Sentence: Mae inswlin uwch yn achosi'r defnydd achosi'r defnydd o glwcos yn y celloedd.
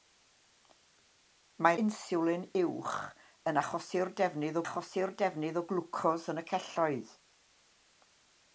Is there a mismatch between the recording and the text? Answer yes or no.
no